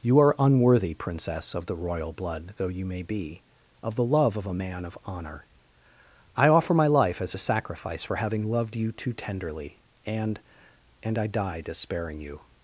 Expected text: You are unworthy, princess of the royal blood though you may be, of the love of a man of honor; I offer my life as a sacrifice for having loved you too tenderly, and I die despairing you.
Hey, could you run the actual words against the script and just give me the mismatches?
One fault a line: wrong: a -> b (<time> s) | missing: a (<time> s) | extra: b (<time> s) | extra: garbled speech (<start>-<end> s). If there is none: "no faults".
extra: and (11.0 s)